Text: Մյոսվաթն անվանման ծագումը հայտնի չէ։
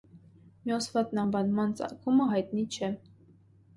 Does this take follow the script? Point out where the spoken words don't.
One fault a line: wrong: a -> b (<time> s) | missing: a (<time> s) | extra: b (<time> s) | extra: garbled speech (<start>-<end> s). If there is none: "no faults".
no faults